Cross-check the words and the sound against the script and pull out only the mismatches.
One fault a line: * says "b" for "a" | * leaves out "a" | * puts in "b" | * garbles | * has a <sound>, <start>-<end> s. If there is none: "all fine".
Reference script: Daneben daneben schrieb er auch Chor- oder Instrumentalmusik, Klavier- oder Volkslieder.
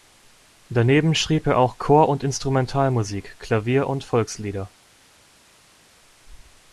* leaves out "daneben"
* says "und" for "oder"
* says "und" for "oder"